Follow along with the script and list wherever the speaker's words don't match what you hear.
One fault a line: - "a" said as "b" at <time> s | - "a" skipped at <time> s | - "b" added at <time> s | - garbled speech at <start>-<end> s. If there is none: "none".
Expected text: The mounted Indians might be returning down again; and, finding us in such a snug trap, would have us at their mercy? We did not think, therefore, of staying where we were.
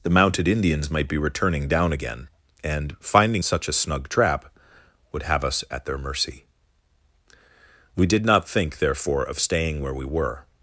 - "us in" skipped at 3.4 s